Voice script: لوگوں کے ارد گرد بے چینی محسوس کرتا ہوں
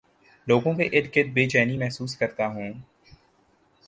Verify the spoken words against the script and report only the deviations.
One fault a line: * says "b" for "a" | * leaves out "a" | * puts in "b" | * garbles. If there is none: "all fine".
all fine